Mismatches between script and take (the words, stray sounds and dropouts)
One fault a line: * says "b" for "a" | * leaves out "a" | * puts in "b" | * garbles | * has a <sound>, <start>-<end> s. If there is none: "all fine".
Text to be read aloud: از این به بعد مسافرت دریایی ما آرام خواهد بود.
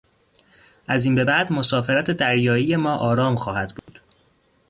* has a dropout, 3.8-3.9 s